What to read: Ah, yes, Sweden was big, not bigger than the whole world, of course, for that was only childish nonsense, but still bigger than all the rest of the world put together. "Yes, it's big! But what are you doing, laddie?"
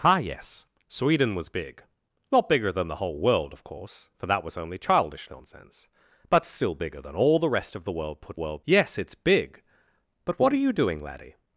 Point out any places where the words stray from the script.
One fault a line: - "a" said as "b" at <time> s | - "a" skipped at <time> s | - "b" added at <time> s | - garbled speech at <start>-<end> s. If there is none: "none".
- "together" said as "world" at 8.3 s